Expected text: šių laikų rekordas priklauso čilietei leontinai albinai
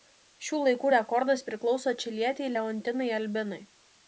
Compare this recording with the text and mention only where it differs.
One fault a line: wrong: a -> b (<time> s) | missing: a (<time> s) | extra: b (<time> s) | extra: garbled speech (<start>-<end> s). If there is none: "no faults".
no faults